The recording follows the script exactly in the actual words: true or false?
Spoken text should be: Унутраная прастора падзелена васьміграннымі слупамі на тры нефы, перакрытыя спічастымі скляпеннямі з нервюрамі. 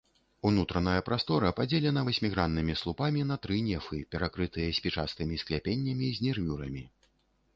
true